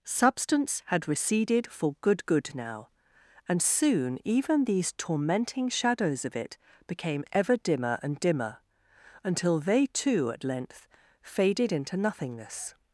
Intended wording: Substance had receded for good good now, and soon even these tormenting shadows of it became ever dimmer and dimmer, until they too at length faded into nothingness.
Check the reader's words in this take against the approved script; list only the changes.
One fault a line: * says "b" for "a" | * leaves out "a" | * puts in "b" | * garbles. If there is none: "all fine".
all fine